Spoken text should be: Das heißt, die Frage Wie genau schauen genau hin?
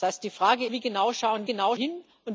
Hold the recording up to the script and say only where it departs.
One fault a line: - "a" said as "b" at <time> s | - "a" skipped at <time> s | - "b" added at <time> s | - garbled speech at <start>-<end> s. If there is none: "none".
none